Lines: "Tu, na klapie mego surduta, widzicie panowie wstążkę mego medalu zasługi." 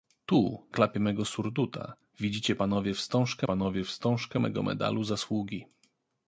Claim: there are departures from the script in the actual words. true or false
true